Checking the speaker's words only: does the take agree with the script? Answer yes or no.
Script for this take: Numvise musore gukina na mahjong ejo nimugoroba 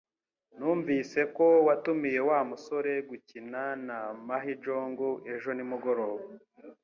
no